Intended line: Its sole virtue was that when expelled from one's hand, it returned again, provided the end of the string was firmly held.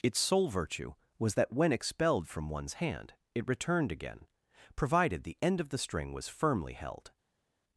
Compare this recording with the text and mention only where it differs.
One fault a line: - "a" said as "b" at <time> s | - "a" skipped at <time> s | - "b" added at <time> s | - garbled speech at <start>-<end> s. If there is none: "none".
none